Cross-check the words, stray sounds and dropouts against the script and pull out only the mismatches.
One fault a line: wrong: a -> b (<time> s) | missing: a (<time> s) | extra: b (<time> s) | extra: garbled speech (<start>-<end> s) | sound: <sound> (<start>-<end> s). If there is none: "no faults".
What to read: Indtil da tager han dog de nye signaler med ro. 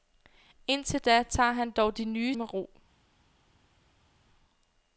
missing: signaler (2.4 s)